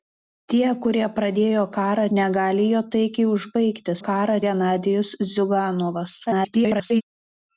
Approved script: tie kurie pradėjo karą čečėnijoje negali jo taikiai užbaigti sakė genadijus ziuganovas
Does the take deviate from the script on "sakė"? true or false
true